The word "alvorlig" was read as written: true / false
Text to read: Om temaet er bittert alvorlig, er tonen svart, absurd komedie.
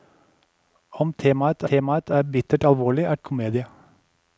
true